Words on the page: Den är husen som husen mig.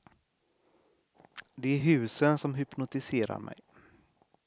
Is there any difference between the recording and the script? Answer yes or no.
yes